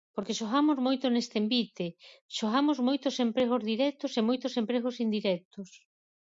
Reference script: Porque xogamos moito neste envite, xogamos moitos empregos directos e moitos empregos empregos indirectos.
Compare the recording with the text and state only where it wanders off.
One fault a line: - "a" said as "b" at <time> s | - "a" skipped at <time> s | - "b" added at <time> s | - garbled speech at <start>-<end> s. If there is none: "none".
- "empregos" skipped at 5.0 s